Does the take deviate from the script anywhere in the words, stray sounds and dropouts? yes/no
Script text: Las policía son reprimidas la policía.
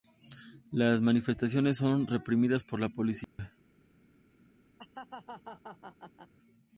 yes